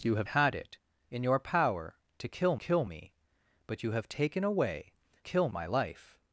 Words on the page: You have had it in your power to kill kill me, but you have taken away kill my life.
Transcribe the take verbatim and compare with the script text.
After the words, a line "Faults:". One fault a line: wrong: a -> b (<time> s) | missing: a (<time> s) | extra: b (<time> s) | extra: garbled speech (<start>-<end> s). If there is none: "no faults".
You have had it in your power to kill kill me, but you have taken away kill my life.
Faults:
no faults